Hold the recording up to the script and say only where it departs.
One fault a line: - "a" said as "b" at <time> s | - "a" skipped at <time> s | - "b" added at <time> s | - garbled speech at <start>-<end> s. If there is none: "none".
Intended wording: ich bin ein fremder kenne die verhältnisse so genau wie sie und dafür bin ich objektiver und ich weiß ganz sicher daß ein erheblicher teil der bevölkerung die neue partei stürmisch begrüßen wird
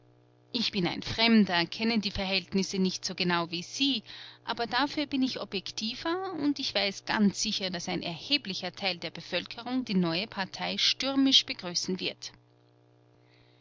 - "nicht" added at 2.8 s
- "und" said as "aber" at 4.4 s